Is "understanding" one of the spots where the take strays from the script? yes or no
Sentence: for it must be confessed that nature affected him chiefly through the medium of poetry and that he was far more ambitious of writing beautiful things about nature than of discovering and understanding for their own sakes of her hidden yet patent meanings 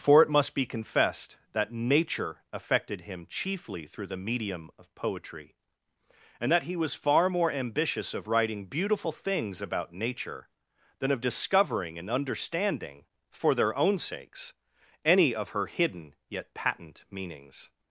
no